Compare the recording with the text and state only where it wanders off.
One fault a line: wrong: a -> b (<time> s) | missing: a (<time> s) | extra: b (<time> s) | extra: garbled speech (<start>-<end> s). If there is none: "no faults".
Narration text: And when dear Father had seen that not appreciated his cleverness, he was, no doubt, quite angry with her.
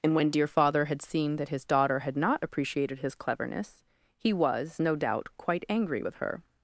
extra: his daughter had (1.5 s)